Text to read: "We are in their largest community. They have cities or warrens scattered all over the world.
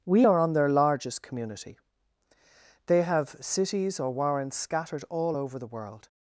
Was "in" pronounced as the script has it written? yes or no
no